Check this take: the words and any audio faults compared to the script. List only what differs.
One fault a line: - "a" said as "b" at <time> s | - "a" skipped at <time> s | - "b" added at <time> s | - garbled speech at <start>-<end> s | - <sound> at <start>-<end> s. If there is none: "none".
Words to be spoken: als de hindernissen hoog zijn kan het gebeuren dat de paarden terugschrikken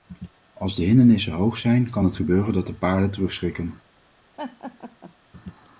- laugh at 4.4-5.1 s